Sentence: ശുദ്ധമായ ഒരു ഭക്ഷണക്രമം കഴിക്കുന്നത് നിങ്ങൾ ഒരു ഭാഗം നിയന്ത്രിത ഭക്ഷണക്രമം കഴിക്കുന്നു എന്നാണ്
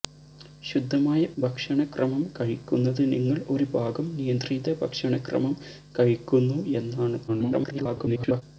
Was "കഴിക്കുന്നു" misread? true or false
false